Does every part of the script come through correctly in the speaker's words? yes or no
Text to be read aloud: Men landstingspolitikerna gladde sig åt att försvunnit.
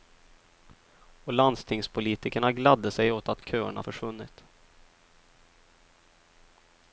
no